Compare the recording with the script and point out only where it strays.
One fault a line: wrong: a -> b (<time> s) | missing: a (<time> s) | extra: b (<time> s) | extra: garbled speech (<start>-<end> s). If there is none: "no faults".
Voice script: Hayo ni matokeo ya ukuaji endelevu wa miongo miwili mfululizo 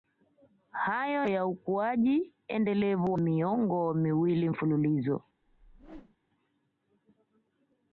missing: ni matokeo (1.3 s)
missing: wa (3.1 s)